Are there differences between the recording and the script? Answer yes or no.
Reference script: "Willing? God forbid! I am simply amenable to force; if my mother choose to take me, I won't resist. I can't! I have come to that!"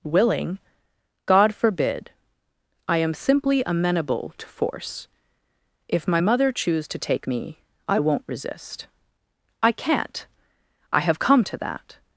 no